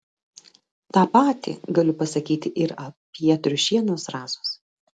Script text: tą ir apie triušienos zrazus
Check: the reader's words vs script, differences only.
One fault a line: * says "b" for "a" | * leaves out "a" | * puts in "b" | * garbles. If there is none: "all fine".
* puts in "patį galiu pasakyti"